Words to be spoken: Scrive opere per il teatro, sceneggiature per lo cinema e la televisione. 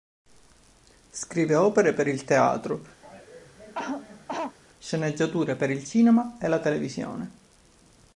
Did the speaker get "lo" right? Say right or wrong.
wrong